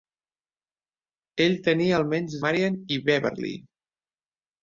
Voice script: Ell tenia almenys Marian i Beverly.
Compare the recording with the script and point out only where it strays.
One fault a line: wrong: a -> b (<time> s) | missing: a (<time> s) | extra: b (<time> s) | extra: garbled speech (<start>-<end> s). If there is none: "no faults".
no faults